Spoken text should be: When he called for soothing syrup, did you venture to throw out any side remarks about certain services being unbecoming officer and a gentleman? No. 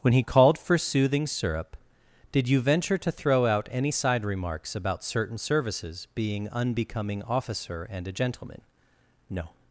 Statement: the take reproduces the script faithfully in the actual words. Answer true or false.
true